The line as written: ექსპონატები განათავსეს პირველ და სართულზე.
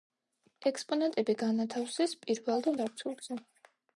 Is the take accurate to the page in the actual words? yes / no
yes